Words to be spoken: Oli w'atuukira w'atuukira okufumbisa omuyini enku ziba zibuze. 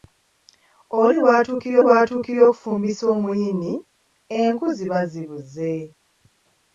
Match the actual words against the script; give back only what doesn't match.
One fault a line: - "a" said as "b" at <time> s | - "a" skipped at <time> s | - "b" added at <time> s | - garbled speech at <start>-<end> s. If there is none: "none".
none